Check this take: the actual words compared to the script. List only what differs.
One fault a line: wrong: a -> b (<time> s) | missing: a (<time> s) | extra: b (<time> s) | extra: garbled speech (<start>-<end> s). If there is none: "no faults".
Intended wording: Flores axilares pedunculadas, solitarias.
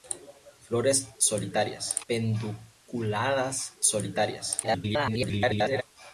wrong: axilares -> solitarias (1.2 s)
extra: garbled speech (4.6-5.8 s)